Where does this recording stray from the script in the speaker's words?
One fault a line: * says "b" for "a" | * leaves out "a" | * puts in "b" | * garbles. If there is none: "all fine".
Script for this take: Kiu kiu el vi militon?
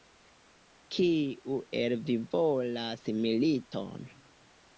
* leaves out "kiu"
* puts in "volas"